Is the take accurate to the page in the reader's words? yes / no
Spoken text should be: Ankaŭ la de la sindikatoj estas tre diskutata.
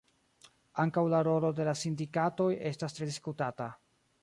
no